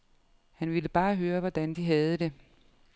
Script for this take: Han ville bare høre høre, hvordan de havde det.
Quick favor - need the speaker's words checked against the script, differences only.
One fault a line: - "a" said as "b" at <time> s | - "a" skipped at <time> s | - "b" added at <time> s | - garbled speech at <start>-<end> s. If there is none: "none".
- "høre" skipped at 1.4 s